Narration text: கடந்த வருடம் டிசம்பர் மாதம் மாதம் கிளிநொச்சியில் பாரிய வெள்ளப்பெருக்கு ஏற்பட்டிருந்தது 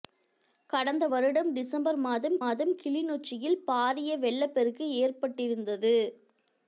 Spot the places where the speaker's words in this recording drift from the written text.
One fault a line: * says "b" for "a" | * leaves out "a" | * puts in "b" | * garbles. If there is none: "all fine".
all fine